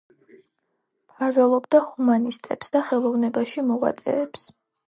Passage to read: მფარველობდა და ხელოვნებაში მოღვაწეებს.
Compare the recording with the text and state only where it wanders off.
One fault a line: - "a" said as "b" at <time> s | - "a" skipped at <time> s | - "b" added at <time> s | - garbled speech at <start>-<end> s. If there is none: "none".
- "ჰუმანისტებს" added at 1.9 s